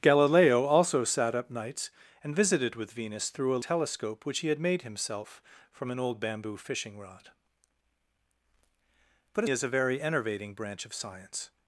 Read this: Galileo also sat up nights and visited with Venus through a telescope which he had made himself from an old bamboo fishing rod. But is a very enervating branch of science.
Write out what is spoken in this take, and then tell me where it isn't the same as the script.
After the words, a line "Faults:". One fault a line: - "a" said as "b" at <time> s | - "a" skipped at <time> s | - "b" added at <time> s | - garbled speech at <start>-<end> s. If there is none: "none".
Galileo also sat up nights and visited with Venus through a telescope which he had made himself from an old bamboo fishing rod. But is a very enervating branch of science.
Faults:
none